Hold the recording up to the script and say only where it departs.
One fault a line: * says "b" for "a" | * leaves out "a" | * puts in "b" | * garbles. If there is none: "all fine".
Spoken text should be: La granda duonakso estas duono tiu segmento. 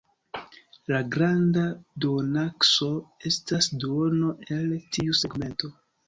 * puts in "el"